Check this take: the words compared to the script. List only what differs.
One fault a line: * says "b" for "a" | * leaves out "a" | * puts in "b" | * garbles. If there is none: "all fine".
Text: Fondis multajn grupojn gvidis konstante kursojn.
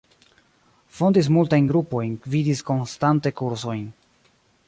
all fine